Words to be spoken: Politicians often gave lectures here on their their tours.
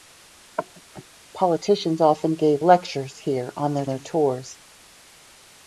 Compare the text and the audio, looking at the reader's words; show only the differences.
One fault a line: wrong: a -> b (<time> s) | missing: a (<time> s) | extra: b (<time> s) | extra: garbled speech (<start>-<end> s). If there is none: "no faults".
no faults